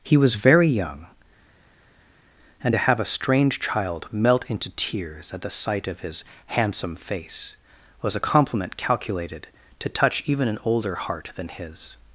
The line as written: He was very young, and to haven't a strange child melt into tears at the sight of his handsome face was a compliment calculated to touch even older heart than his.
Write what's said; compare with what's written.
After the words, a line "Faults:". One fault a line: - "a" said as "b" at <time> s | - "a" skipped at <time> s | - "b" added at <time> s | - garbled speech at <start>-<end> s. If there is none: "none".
He was very young, and to have a strange child melt into tears at the sight of his handsome face was a compliment calculated to touch even an older heart than his.
Faults:
- "haven't" said as "have" at 2.8 s
- "an" added at 10.5 s